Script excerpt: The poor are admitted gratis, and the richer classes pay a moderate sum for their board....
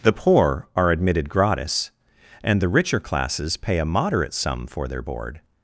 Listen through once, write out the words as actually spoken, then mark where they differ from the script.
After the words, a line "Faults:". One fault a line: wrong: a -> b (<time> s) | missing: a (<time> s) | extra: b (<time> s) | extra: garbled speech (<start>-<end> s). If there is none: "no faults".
The poor are admitted gratis, and the richer classes pay a moderate sum for their board....
Faults:
no faults